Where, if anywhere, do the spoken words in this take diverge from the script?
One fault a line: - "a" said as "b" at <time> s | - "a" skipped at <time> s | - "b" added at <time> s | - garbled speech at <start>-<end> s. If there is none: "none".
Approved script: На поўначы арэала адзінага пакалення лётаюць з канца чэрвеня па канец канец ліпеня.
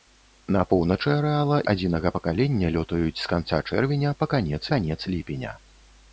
none